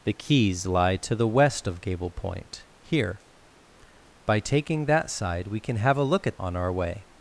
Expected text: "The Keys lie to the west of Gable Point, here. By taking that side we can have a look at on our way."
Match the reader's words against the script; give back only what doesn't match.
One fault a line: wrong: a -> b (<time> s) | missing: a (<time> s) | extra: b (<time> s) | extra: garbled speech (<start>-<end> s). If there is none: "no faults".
no faults